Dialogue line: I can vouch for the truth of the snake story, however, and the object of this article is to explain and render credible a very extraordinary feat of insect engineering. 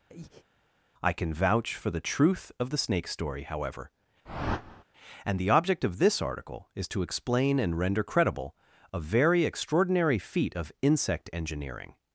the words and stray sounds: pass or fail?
fail